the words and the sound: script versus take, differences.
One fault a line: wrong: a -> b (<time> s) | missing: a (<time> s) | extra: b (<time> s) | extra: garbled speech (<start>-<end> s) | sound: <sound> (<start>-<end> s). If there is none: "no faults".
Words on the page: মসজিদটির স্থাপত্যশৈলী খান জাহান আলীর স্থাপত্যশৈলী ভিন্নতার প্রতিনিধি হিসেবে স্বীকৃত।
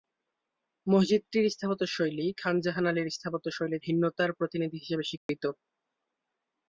sound: dropout (5.2-5.3 s)